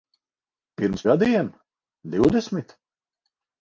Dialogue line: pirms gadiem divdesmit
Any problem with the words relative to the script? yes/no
no